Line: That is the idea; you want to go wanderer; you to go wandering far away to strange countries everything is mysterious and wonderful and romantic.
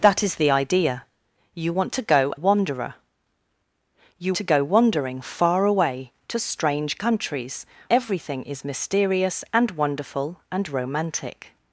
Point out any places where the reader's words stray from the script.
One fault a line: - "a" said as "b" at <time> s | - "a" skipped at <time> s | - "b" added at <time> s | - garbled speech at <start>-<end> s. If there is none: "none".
none